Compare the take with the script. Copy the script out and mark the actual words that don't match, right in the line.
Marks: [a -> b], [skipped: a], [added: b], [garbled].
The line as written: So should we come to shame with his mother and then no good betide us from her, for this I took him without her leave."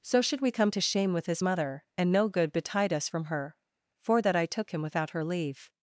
So should we come to shame with his mother and [skipped: then] no good betide us from her, for [this -> that] I took him without her leave."